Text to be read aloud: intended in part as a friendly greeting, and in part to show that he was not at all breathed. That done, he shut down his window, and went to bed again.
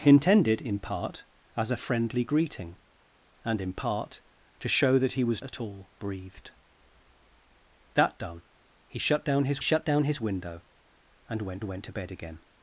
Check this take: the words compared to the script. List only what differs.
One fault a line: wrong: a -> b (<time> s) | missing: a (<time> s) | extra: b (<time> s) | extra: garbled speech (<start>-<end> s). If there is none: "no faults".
missing: not (5.4 s)
extra: shut down his (9.6 s)
extra: went (11.6 s)